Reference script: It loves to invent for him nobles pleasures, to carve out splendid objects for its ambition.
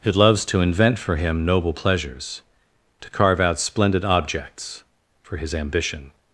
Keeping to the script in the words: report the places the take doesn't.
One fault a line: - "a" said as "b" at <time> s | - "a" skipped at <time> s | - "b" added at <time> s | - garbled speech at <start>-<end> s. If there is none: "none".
- "nobles" said as "noble" at 1.4 s
- "its" said as "his" at 5.4 s